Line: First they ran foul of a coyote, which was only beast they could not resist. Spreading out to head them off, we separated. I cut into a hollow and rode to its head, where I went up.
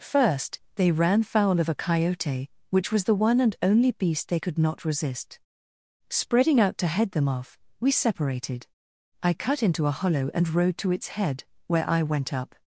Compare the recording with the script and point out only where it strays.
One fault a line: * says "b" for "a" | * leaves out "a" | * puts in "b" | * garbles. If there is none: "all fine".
* puts in "the one and"